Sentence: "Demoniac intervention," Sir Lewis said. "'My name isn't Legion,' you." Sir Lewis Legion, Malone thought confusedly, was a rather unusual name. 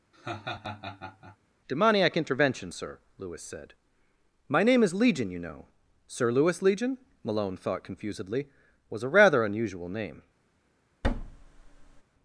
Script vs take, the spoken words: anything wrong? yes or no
yes